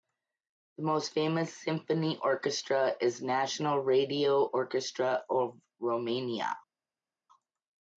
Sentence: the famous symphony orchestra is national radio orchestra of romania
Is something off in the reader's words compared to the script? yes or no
yes